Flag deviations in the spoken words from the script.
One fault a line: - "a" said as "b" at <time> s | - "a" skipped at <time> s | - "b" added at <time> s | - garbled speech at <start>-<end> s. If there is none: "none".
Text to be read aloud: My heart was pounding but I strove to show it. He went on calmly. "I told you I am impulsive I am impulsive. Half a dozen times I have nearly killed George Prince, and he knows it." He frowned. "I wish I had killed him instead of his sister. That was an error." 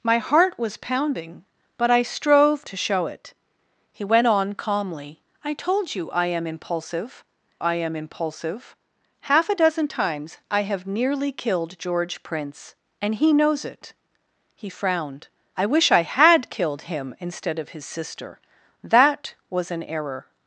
none